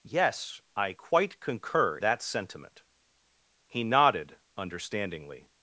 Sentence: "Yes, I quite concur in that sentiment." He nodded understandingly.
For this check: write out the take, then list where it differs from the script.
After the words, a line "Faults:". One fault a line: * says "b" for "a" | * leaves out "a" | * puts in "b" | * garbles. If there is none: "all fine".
"Yes, I quite concur that sentiment." He nodded understandingly.
Faults:
* leaves out "in"